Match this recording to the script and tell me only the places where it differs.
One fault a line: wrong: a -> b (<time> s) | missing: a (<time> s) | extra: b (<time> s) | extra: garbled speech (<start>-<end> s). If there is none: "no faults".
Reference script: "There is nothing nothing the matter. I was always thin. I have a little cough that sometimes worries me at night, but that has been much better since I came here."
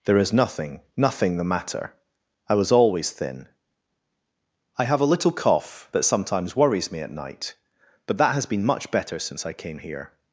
no faults